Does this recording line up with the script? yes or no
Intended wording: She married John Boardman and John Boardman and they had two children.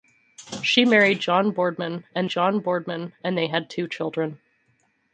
yes